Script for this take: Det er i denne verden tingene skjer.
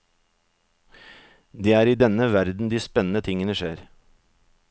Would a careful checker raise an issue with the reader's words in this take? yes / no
yes